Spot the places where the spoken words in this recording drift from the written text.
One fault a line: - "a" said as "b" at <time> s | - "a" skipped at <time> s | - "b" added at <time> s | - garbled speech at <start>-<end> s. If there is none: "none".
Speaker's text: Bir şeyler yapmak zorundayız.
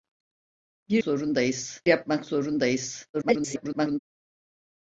- "şeyler" said as "zorundayız" at 1.0 s
- garbled speech at 3.1-4.0 s